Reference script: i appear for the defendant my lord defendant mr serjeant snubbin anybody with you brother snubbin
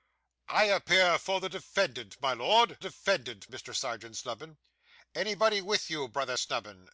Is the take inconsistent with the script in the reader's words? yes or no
no